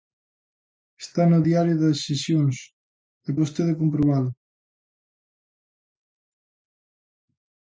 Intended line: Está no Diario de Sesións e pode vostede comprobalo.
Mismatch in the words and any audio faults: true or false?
true